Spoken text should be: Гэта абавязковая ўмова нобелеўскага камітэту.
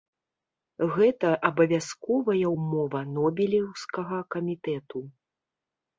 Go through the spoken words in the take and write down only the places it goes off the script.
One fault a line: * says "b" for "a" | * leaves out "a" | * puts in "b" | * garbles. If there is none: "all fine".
all fine